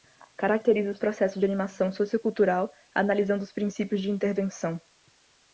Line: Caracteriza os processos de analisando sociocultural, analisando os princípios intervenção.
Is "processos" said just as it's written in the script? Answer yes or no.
yes